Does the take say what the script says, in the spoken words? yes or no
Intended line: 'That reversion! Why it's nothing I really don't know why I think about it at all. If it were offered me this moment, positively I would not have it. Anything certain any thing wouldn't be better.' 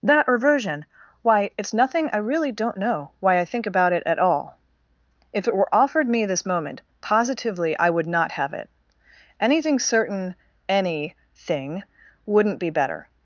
yes